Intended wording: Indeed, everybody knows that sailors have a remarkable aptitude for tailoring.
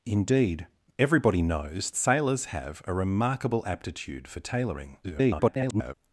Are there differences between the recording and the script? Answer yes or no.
yes